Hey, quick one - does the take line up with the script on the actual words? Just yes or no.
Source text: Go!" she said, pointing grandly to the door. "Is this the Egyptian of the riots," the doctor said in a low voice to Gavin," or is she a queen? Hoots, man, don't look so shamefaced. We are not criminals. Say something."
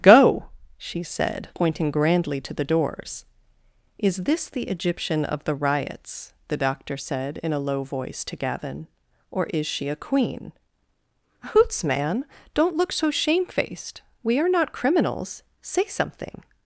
no